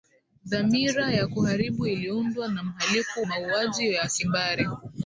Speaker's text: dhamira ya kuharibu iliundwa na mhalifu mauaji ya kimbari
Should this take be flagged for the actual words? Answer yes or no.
no